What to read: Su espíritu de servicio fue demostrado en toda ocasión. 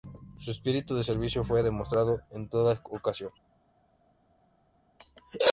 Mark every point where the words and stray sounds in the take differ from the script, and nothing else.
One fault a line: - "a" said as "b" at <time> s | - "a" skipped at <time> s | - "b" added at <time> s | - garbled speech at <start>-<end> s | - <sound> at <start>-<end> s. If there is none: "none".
none